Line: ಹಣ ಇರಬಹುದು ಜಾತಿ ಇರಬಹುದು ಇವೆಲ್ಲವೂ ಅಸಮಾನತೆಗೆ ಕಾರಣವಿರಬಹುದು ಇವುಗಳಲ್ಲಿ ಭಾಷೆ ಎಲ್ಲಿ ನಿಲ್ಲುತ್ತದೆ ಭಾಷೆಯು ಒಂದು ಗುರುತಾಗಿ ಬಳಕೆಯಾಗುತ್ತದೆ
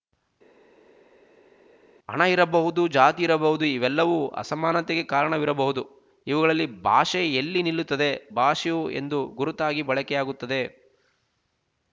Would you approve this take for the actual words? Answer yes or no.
yes